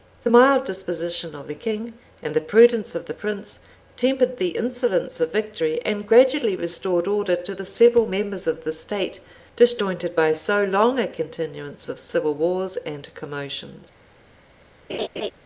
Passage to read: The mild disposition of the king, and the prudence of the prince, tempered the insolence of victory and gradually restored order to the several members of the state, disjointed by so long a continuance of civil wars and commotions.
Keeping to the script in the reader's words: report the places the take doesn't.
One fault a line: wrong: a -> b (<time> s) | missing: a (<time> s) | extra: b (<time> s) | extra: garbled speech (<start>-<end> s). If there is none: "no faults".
no faults